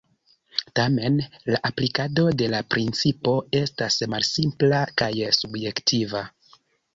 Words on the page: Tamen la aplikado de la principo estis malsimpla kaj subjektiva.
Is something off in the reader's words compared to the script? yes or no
yes